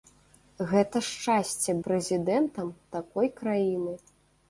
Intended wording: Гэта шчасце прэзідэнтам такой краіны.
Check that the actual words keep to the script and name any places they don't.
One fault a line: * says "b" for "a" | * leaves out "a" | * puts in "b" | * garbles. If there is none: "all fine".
all fine